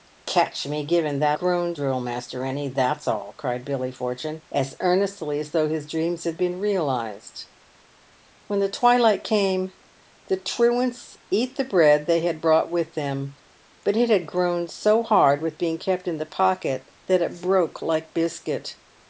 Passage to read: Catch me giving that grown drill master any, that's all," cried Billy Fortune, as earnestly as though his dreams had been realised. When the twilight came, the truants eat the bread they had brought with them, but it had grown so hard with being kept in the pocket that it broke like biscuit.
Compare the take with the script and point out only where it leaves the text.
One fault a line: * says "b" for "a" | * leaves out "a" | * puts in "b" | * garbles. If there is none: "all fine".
all fine